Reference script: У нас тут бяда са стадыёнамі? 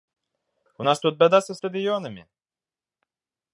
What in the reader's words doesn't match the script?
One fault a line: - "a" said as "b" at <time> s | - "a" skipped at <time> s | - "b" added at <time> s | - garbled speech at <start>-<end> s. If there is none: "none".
none